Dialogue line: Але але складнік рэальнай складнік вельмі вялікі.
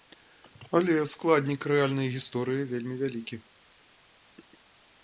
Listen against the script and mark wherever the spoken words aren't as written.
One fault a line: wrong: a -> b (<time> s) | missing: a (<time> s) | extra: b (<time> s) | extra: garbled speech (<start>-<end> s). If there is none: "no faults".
missing: але (0.9 s)
wrong: складнік -> гісторыі (2.2 s)